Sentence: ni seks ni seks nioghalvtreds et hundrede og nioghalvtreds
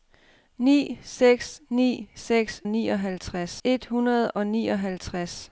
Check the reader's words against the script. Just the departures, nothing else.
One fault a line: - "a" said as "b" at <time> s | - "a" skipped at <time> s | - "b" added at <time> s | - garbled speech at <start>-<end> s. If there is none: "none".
none